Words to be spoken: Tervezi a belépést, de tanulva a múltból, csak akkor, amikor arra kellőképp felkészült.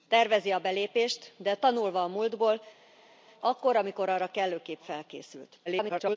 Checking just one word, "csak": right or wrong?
wrong